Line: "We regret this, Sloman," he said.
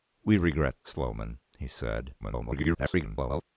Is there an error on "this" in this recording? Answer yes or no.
yes